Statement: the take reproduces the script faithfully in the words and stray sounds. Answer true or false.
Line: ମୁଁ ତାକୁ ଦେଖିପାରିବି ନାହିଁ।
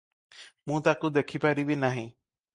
true